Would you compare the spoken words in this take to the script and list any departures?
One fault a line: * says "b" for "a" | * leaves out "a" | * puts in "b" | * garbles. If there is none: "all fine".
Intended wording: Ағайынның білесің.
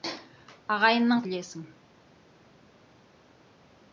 all fine